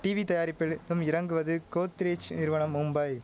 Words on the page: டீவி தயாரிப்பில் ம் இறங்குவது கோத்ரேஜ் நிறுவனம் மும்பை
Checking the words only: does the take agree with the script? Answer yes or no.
yes